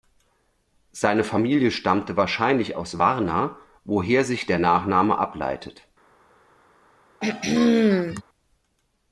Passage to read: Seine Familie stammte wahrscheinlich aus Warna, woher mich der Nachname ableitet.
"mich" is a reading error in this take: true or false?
true